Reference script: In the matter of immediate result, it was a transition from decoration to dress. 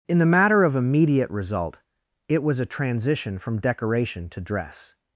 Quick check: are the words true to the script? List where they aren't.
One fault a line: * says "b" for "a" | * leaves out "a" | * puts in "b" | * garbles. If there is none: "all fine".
all fine